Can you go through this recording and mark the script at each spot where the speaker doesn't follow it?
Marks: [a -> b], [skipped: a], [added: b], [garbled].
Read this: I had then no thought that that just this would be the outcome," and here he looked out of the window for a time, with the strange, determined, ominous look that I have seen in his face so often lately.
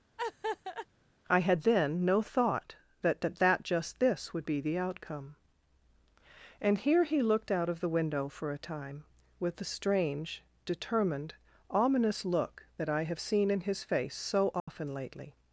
I had then no thought that that [added: that] just this would be the outcome," and here he looked out of the window for a time, with the strange, determined, ominous look that I have seen in his face so often lately.